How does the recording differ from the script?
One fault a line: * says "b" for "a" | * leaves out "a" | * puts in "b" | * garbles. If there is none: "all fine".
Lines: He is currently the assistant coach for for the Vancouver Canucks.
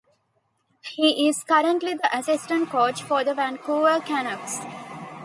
* leaves out "for"